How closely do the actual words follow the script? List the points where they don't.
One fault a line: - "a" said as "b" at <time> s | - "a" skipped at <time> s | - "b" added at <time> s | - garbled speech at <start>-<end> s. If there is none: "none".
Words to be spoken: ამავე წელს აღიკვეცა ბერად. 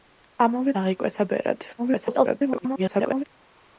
- "წელს" skipped at 0.7 s
- garbled speech at 1.8-3.2 s